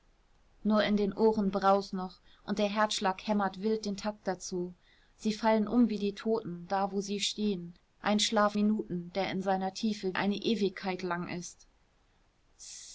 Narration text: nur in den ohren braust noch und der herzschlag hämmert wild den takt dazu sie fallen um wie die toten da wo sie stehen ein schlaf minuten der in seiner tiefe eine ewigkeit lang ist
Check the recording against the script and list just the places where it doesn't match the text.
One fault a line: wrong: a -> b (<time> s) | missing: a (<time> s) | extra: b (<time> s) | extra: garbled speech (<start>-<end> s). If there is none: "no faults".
no faults